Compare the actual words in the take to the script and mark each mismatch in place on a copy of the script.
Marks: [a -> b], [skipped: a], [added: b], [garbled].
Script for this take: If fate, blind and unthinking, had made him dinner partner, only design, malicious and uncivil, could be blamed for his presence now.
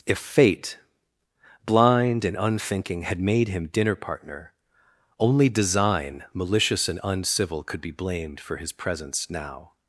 If fate, blind and unthinking, had made him dinner partner, only design, malicious and uncivil, could be blamed for his presence now.